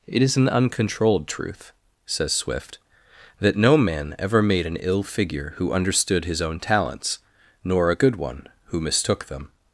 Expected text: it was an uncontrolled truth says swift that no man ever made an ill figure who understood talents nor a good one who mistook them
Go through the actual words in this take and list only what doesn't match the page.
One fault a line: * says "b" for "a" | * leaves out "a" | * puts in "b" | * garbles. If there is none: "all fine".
* says "is" for "was"
* puts in "his own"